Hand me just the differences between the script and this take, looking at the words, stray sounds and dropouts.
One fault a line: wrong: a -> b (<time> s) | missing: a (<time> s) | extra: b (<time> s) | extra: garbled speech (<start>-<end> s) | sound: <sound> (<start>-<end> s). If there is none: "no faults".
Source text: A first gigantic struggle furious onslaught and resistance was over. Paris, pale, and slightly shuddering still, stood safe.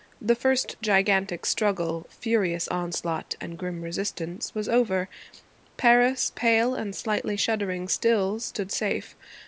wrong: A -> The (0.2 s)
extra: grim (3.6 s)